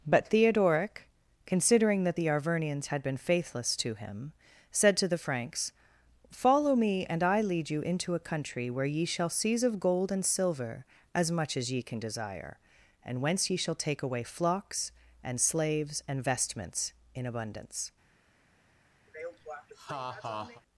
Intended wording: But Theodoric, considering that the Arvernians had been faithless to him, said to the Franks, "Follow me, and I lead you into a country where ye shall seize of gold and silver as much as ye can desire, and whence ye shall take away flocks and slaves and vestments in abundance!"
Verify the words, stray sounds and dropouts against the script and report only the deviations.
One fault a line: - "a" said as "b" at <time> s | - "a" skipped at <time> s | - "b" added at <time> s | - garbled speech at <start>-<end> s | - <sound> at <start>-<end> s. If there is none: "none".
- laugh at 19.1-20.6 s